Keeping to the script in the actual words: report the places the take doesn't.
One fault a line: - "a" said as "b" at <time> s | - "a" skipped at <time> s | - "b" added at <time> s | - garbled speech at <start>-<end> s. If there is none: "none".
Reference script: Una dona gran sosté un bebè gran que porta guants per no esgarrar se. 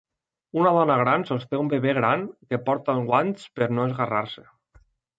none